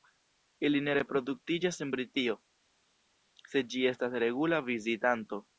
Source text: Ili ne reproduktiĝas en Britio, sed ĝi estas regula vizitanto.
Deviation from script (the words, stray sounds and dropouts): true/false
false